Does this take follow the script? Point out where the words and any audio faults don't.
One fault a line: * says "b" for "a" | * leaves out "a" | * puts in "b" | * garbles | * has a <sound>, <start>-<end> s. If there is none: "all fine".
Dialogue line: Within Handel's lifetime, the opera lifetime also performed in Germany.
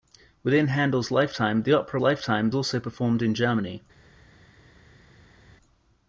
all fine